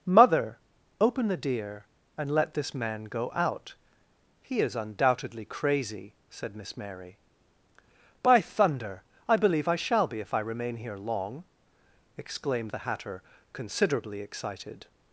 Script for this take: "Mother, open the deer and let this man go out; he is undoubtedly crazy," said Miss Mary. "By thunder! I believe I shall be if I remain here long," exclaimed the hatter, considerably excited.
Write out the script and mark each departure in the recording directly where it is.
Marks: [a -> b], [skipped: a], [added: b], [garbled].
"Mother, open the deer and let this man go out; he is undoubtedly crazy," said Miss Mary. "By thunder! I believe I shall be if I remain here long," exclaimed the hatter, considerably excited.